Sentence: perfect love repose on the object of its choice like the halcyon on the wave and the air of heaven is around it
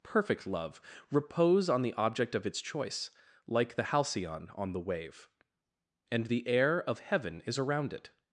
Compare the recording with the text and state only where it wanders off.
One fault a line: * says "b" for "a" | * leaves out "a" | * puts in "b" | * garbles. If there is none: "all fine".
all fine